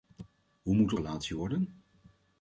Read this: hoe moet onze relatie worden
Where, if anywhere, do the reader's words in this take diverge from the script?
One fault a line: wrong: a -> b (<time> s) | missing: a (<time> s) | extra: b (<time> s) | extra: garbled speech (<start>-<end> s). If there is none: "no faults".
missing: onze (0.9 s)